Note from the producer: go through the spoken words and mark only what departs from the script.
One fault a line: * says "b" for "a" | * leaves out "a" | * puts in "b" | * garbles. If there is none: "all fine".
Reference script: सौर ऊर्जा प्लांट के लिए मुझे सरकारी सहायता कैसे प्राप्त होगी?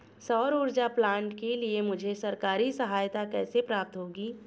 all fine